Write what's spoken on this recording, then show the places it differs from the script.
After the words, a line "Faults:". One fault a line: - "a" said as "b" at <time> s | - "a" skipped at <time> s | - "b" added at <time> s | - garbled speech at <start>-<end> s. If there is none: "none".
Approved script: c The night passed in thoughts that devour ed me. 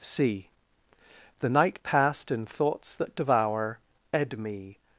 c The night passed in thoughts that devour ed me.
Faults:
none